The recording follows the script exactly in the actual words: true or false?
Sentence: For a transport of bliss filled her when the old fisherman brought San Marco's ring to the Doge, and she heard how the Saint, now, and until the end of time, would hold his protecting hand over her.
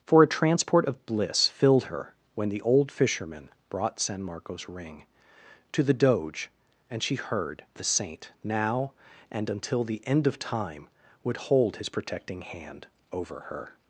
false